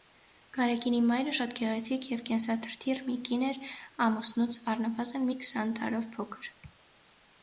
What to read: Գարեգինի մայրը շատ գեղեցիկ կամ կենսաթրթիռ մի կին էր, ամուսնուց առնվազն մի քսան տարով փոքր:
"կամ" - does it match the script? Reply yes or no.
no